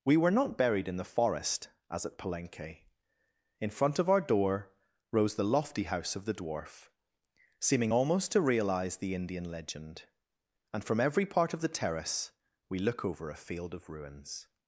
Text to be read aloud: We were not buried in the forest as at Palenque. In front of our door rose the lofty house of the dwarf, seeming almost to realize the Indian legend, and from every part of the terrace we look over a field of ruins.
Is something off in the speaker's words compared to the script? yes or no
no